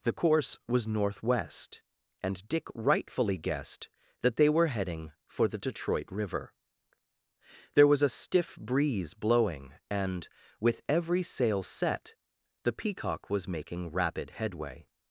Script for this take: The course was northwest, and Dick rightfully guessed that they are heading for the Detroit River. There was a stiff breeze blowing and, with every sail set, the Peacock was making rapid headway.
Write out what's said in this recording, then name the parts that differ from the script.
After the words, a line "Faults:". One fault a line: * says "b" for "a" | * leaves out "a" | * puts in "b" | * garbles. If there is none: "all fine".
The course was northwest, and Dick rightfully guessed that they were heading for the Detroit River. There was a stiff breeze blowing and, with every sail set, the Peacock was making rapid headway.
Faults:
* says "were" for "are"